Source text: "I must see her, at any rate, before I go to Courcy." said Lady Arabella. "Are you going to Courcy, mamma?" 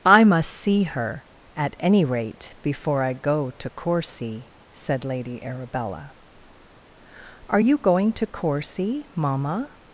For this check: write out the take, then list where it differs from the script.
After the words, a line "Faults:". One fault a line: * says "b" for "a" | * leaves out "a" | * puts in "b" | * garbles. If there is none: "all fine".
"I must see her, at any rate, before I go to Courcy." said Lady Arabella. "Are you going to Courcy, mamma?"
Faults:
all fine